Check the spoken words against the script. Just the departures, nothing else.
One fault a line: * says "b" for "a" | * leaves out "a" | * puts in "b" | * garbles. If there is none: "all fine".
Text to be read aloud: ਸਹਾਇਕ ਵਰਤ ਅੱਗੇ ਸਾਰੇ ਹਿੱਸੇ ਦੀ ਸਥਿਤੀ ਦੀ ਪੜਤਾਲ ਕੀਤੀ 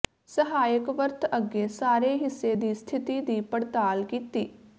all fine